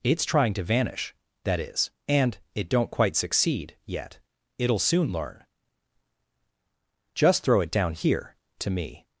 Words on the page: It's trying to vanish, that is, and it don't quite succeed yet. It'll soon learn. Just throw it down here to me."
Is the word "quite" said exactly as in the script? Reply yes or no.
yes